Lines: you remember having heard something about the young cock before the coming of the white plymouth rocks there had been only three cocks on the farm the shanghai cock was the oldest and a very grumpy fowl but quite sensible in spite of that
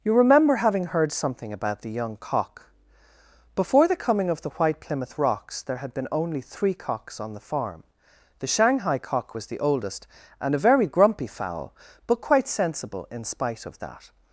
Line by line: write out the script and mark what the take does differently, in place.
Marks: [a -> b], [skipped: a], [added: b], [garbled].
you remember having heard something about the young cock before the coming of the white plymouth rocks there had been only three cocks on the farm the shanghai cock was the oldest and a very grumpy fowl but quite sensible in spite of that